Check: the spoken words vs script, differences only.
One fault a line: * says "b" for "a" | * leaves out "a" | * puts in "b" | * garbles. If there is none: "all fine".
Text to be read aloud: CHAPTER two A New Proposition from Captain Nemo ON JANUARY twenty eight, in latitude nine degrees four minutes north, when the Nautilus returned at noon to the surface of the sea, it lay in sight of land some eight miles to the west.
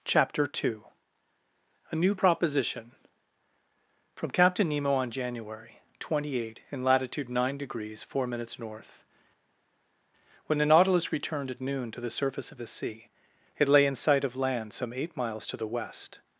all fine